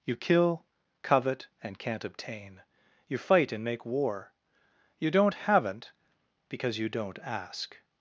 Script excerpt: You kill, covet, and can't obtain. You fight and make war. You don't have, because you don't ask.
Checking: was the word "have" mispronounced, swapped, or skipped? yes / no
yes